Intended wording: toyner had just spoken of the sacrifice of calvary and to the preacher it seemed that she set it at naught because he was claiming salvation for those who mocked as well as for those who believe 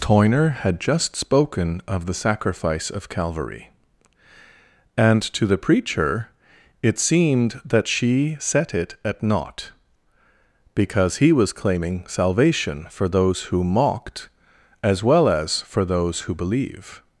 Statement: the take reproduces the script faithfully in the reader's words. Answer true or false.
true